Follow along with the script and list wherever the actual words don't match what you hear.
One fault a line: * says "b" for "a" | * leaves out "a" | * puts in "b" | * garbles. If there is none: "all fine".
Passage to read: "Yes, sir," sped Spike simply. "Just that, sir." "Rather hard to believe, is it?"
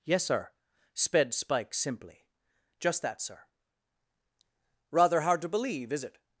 all fine